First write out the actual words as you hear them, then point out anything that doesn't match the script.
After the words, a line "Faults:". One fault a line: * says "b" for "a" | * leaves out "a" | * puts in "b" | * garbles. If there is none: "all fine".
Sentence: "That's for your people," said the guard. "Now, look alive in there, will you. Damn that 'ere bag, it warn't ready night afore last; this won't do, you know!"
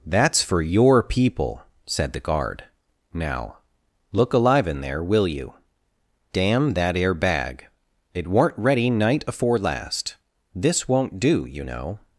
"That's for your people," said the guard. "Now, look alive in there, will you. Damn that 'ere bag, it warn't ready night afore last; this won't do, you know!"
Faults:
all fine